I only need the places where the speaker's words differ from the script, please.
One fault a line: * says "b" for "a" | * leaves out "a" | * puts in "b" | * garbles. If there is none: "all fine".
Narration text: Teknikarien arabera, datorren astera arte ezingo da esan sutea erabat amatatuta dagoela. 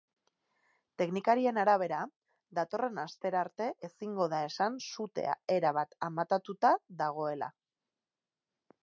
all fine